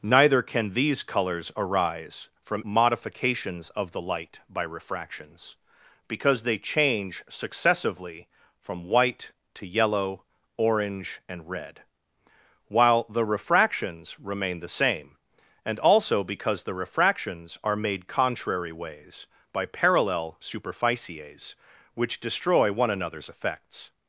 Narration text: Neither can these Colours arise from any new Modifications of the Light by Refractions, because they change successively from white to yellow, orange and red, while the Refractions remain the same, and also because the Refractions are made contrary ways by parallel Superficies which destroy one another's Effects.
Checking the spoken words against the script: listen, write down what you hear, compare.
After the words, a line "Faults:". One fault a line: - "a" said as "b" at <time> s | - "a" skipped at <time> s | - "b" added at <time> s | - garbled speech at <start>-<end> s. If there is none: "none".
Neither can these Colours arise from Modifications of the Light by Refractions, because they change successively from white to yellow, orange and red, while the Refractions remain the same, and also because the Refractions are made contrary ways by parallel Superficies which destroy one another's Effects.
Faults:
- "any new" skipped at 2.6 s